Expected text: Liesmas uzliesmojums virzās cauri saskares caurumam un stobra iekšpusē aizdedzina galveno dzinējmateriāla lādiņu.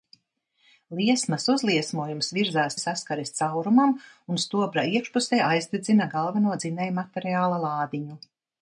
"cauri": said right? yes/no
no